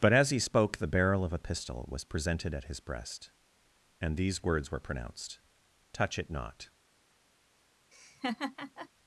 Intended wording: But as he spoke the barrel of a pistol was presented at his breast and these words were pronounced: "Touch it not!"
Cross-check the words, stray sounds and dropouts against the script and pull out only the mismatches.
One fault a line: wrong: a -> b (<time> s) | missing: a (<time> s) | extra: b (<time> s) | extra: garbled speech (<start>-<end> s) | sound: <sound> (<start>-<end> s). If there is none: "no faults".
sound: laugh (7.9-8.9 s)